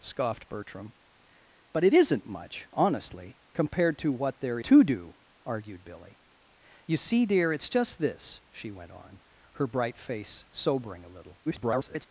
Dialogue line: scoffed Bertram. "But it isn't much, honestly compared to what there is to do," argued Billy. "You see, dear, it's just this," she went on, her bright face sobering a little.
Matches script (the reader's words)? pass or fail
fail